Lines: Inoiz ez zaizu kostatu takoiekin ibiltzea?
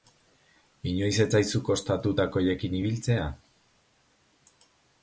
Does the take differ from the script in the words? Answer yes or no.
no